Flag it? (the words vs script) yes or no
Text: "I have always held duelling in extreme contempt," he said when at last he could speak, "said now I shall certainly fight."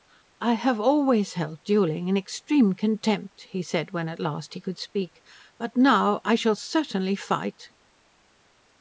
yes